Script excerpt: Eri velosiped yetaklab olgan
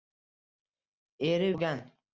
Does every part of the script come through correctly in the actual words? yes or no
no